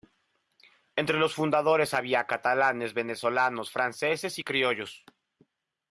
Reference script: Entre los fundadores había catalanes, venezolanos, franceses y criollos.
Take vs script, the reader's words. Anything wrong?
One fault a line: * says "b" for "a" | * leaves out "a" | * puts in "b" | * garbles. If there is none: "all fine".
all fine